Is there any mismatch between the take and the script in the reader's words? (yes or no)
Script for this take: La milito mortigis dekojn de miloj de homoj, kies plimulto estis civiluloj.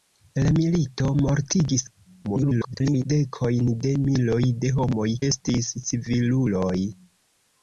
yes